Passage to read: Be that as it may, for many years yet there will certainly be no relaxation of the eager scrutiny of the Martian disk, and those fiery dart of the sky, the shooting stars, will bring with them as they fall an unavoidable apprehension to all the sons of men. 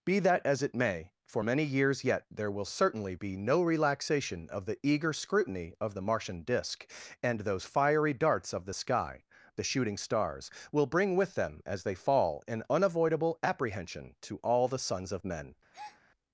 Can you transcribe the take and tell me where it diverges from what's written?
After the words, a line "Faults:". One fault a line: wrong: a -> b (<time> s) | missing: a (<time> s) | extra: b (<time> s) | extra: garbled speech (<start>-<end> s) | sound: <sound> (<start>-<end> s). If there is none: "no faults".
Be that as it may, for many years yet there will certainly be no relaxation of the eager scrutiny of the Martian disk, and those fiery darts of the sky, the shooting stars, will bring with them as they fall an unavoidable apprehension to all the sons of men.
Faults:
wrong: dart -> darts (8.1 s)
sound: breath (15.7-16.0 s)